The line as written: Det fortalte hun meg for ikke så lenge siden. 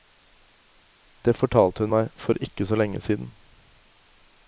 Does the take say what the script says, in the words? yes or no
yes